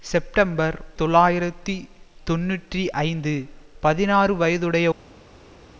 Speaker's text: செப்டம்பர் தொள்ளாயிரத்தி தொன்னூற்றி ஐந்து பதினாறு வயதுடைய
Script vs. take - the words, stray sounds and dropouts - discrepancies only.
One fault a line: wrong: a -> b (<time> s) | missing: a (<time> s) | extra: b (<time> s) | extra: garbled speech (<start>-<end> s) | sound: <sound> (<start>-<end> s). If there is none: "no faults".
no faults